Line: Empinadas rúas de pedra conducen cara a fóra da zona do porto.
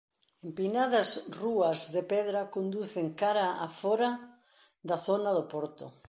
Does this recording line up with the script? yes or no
yes